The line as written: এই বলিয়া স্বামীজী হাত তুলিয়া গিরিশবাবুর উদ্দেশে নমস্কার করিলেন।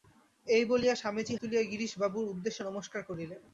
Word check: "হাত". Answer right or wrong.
wrong